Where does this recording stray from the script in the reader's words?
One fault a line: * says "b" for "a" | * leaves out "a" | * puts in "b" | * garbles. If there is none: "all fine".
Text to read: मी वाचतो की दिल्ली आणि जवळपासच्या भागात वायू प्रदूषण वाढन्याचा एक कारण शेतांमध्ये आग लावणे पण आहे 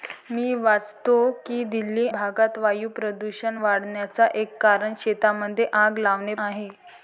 * leaves out "आणि जवळपासच्या"
* leaves out "पण"